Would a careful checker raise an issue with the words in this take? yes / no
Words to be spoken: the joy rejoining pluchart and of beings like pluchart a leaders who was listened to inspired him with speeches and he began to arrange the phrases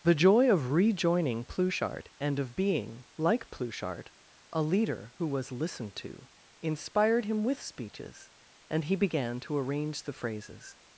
yes